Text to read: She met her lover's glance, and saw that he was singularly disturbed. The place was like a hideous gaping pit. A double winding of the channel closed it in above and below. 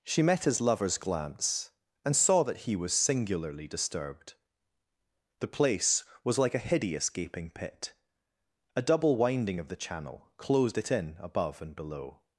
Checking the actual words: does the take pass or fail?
fail